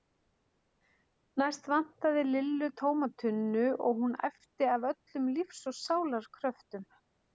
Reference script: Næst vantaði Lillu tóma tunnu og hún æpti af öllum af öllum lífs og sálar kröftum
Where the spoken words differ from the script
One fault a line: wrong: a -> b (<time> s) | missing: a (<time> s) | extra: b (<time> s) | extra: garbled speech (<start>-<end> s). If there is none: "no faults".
missing: af öllum (5.3 s)